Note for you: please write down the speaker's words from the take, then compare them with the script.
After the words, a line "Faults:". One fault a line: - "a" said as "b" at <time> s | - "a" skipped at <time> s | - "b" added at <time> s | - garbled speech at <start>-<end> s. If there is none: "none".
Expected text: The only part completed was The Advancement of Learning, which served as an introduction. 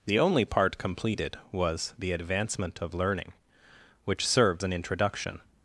The only part completed was The Advancement of Learning, which served an introduction.
Faults:
- "as" skipped at 4.6 s